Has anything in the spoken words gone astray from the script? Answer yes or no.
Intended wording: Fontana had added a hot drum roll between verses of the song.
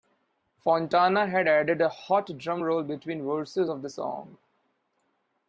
no